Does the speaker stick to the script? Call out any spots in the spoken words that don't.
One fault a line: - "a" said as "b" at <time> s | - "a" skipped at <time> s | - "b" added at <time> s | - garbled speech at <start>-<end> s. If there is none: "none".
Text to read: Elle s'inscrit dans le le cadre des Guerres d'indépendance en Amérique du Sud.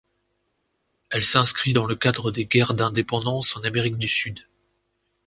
- "le" skipped at 2.0 s